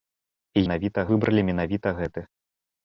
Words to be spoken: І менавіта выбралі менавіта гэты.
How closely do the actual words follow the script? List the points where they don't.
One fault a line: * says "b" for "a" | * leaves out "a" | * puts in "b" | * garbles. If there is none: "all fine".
all fine